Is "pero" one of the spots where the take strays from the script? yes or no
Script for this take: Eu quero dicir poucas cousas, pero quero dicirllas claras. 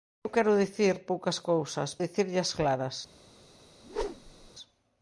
yes